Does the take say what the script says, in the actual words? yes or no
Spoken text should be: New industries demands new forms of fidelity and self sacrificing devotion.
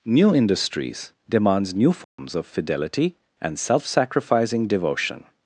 yes